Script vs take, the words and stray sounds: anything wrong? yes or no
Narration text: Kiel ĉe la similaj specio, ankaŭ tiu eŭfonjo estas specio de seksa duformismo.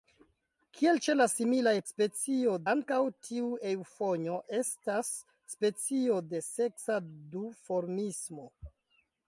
no